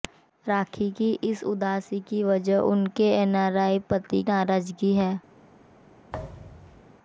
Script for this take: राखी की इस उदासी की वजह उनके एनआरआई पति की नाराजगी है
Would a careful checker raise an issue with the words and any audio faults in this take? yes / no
yes